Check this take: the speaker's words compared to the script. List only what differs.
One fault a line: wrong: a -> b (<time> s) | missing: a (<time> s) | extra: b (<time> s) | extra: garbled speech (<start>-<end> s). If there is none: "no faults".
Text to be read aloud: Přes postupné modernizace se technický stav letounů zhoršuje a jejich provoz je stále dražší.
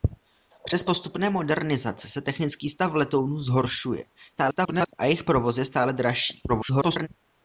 extra: garbled speech (4.4-4.9 s)
extra: garbled speech (6.5-7.1 s)